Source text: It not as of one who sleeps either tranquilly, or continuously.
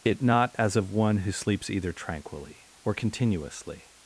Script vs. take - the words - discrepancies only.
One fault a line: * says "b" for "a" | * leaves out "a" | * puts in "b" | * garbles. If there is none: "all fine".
all fine